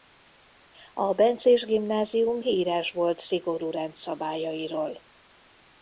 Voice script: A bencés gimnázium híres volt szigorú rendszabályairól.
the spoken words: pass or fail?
pass